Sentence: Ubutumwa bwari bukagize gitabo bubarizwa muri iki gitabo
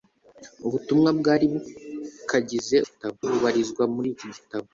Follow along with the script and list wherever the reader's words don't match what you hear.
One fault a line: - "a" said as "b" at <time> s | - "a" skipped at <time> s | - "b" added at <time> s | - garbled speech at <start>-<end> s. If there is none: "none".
none